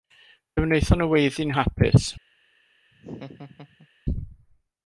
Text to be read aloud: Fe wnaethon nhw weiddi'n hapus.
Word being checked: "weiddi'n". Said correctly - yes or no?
yes